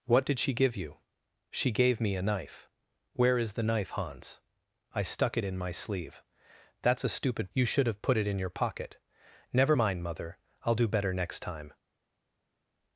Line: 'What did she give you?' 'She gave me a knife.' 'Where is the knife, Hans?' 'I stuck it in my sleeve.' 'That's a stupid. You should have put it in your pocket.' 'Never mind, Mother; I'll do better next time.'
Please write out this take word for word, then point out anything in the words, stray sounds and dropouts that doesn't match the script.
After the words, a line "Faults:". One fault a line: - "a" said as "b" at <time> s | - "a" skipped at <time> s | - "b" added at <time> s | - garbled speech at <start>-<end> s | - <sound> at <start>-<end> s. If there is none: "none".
'What did she give you?' 'She gave me a knife.' 'Where is the knife, Hans?' 'I stuck it in my sleeve.' 'That's a stupid. You should have put it in your pocket.' 'Never mind, Mother; I'll do better next time.'
Faults:
none